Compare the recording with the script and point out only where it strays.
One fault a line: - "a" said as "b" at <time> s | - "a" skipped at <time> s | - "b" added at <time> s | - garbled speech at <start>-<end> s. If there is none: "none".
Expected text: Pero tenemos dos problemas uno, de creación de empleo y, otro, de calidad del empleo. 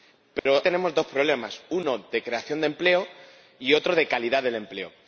none